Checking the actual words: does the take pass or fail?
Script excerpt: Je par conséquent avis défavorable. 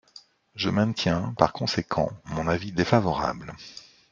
fail